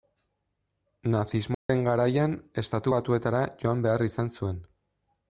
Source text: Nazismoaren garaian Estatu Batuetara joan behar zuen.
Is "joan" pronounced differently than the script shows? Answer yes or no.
no